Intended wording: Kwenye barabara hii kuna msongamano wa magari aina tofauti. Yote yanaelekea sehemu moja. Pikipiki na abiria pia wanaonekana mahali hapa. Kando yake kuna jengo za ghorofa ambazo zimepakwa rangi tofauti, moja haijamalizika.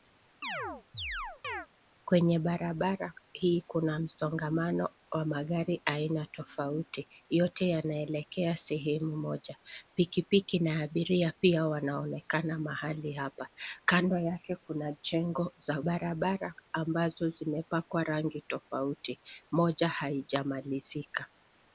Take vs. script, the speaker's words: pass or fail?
fail